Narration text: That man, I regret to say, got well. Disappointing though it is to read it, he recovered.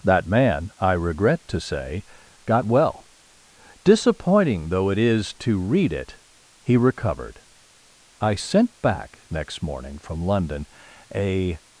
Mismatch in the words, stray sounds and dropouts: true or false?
true